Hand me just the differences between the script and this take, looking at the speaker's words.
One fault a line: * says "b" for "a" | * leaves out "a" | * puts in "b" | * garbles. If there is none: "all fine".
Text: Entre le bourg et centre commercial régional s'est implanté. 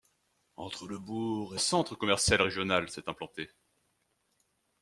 all fine